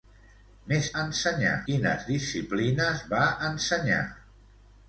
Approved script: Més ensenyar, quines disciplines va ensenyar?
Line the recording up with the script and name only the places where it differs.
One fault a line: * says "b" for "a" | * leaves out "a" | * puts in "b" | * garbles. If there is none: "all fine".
all fine